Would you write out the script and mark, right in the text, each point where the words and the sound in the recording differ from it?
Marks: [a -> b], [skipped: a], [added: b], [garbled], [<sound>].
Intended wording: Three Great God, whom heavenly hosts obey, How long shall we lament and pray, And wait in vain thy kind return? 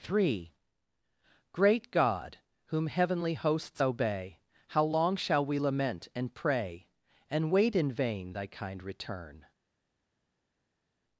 Three Great God, whom heavenly hosts obey, How long shall we lament and pray, And wait in vain thy kind return?